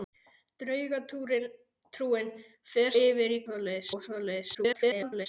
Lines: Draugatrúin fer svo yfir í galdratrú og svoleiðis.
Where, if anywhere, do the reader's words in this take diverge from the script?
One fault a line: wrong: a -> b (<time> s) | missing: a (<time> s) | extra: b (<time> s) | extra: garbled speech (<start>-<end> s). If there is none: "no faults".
missing: svo (2.9 s)
wrong: galdratrú -> svoleiðis (3.5 s)
extra: garbled speech (4.5-5.3 s)